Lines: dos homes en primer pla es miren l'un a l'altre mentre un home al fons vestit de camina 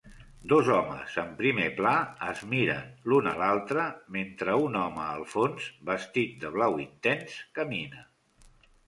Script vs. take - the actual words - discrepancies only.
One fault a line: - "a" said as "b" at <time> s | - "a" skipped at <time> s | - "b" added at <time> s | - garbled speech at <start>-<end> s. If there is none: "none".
- "blau intens" added at 6.6 s